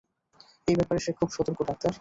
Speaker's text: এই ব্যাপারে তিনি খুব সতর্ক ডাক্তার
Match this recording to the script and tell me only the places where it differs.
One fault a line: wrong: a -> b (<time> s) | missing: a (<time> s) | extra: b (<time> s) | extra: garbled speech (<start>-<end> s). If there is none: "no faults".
wrong: তিনি -> সে (1.0 s)